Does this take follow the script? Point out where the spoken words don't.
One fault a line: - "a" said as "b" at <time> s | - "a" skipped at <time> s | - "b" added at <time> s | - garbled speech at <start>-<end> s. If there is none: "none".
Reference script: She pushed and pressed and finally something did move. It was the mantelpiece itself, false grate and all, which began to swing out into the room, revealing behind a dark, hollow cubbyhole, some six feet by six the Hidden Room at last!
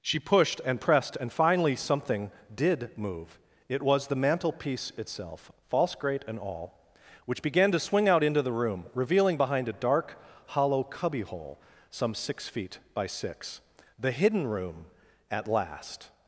none